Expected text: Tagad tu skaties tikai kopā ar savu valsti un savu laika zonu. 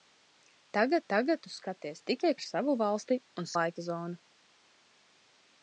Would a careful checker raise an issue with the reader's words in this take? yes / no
yes